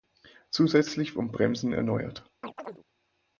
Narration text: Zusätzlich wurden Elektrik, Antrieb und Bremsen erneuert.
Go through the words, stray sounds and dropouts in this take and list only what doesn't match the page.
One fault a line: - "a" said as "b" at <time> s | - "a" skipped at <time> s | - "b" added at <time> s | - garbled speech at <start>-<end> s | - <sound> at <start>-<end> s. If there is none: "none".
- "wurden Elektrik Antrieb" skipped at 1.1 s
- chirp at 2.4-2.8 s